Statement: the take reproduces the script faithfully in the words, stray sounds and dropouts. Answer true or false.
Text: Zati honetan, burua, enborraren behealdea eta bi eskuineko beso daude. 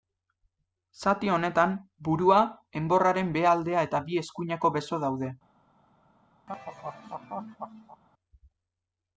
false